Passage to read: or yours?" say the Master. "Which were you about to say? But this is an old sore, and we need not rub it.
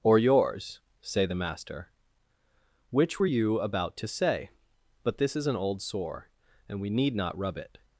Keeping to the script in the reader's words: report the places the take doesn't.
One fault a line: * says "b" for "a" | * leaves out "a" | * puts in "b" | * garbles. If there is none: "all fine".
all fine